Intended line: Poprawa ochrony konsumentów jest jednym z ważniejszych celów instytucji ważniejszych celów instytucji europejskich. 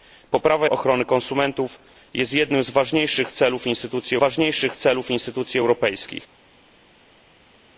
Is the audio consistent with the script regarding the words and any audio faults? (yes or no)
yes